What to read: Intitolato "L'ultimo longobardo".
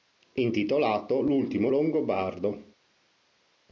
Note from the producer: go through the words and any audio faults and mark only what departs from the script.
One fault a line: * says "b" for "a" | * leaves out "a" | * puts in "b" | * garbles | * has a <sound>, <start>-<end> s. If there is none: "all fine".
all fine